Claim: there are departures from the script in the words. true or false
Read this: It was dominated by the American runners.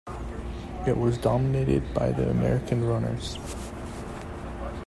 false